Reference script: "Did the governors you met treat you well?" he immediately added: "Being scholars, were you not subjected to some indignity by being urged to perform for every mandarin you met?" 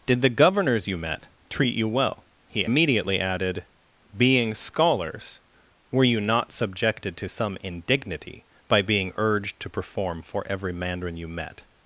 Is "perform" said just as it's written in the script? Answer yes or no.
yes